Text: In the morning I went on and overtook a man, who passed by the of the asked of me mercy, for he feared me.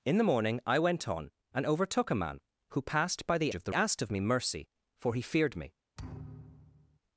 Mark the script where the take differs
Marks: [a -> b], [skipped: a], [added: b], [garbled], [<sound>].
In the morning I went on and overtook a man, who passed by the of the asked of me mercy, for he feared me. [thud]